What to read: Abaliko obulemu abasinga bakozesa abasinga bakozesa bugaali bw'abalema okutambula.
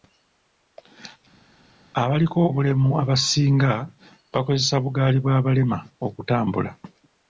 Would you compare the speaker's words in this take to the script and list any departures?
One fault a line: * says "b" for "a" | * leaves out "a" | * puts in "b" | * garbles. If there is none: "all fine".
* leaves out "abasinga bakozesa"